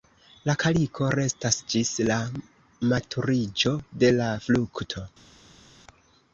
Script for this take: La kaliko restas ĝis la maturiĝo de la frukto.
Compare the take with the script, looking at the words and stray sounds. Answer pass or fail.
pass